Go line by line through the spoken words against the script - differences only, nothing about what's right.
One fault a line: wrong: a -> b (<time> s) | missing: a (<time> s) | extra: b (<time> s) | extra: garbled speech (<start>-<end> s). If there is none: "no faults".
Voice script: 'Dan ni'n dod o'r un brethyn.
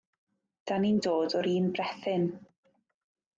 no faults